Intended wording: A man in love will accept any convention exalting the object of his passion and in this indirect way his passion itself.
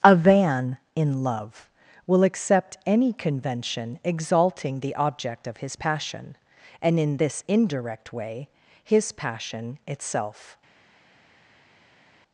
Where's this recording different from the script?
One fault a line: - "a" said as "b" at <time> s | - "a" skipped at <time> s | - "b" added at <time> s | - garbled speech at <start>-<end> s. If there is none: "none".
- "man" said as "van" at 0.1 s